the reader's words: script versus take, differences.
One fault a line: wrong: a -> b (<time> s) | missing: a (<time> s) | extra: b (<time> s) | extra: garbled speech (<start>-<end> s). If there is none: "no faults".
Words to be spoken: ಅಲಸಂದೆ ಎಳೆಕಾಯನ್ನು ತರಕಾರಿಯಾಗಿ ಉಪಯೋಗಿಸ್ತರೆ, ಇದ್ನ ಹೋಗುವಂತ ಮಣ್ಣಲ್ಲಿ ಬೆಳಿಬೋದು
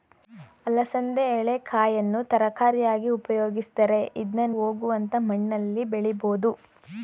no faults